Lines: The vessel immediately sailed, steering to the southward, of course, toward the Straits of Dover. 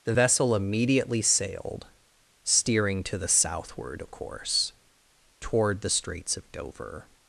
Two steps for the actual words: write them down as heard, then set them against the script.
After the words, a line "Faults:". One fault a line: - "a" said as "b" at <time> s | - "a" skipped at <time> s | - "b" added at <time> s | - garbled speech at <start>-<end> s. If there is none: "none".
The vessel immediately sailed, steering to the southward, of course, toward the Straits of Dover.
Faults:
none